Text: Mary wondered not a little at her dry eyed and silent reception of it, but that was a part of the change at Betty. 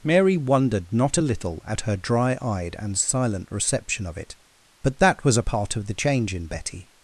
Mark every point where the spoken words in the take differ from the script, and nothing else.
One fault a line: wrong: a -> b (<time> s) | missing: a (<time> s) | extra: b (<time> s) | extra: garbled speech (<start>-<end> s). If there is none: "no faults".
wrong: at -> in (6.3 s)